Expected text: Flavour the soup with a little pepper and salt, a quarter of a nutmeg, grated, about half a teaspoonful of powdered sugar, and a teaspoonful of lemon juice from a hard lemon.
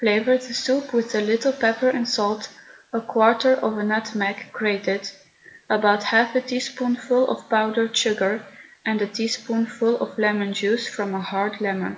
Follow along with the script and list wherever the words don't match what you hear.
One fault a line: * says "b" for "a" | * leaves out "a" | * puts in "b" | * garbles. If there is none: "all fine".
all fine